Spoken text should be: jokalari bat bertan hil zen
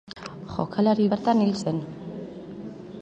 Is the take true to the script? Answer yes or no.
no